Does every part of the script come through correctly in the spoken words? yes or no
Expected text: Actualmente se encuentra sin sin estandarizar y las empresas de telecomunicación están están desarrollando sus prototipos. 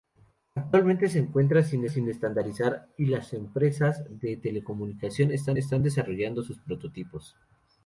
yes